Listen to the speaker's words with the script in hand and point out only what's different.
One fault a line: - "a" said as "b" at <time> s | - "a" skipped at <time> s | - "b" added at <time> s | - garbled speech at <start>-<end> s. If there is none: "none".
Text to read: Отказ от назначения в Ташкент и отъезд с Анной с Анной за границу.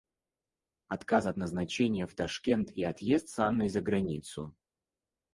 - "с Анной" skipped at 3.7 s